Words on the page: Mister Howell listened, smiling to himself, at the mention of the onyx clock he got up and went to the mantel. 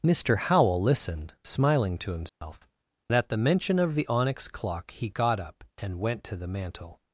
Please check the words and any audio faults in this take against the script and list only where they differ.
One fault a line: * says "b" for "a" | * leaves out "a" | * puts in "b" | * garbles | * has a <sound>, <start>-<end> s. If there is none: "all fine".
* has a dropout, 2.3-2.4 s